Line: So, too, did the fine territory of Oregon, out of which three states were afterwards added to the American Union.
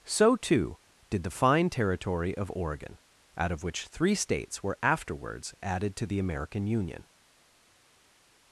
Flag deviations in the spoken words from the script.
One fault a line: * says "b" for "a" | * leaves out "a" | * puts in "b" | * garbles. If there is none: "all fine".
all fine